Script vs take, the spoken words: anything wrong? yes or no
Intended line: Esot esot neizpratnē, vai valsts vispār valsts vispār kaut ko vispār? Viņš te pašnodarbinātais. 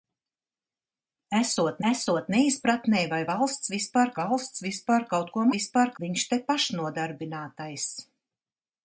no